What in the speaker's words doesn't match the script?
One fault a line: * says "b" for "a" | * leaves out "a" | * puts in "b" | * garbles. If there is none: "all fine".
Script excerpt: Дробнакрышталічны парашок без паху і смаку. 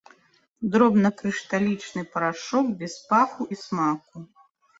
all fine